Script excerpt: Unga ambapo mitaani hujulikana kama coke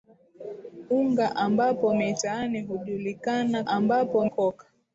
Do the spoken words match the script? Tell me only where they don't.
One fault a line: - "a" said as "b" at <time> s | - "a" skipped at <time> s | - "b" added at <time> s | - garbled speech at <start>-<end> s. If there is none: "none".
- "kama" said as "ambapo" at 3.7 s